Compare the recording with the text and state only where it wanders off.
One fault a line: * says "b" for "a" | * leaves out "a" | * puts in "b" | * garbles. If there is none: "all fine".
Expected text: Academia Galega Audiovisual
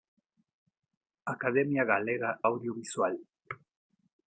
all fine